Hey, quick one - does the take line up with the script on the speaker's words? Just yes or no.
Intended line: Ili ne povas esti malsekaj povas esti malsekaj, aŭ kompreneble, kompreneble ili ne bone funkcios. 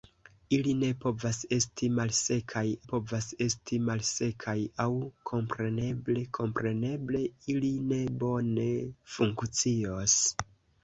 yes